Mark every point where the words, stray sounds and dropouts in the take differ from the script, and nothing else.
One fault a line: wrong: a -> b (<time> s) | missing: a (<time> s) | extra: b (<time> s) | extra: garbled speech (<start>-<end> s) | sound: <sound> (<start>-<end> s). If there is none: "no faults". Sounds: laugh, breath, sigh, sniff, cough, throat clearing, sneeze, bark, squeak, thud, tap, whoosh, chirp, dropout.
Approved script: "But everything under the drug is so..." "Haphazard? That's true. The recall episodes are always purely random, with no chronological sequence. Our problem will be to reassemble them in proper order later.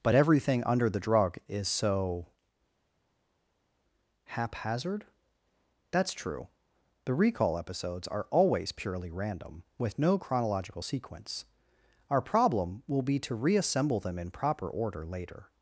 no faults